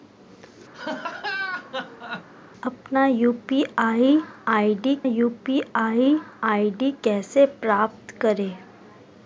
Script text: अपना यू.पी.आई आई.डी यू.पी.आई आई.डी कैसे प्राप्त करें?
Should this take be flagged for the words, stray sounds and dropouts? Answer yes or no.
yes